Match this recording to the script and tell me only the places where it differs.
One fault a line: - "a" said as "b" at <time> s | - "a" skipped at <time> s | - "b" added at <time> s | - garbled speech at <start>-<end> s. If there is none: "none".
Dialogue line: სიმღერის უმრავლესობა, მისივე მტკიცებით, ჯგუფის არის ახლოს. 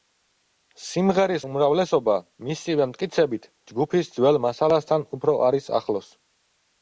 - "ძველ მასალასთან უფრო" added at 4.2 s